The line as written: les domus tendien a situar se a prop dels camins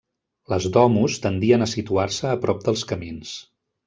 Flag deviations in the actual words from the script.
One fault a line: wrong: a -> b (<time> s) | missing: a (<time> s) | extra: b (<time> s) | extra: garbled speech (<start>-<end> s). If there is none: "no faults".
no faults